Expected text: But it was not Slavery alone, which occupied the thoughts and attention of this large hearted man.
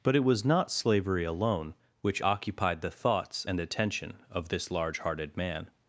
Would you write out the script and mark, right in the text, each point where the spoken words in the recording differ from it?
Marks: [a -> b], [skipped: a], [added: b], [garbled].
But it was not Slavery alone, which occupied the thoughts and attention of this large hearted man.